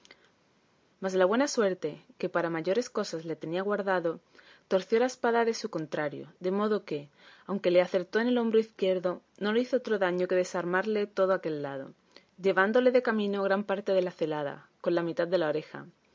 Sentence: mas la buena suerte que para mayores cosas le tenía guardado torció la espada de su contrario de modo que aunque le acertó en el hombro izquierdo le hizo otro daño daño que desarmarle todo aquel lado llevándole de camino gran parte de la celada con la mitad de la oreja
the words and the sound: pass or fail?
fail